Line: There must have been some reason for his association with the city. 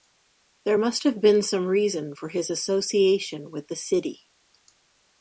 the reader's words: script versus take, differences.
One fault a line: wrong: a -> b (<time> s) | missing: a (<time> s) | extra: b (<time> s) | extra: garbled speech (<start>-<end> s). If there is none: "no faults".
no faults